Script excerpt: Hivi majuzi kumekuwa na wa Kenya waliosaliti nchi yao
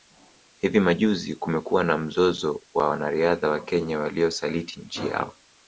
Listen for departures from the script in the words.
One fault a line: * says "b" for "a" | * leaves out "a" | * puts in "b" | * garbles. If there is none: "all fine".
* puts in "mzozo wa wanariadha"